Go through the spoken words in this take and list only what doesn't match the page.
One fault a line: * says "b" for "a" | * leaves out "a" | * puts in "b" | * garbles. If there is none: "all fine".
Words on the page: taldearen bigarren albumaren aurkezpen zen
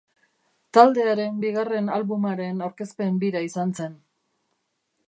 * puts in "bira izan"